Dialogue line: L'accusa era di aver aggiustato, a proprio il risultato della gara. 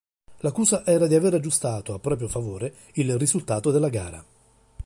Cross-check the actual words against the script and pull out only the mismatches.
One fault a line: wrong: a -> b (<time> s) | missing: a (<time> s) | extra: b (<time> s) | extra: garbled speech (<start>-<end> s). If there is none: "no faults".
extra: favore (2.3 s)